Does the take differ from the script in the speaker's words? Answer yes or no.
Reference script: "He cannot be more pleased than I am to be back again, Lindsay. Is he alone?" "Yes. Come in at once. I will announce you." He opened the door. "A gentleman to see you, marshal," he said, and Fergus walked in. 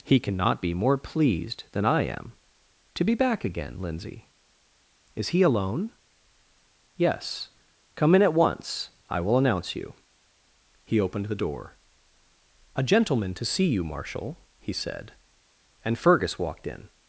no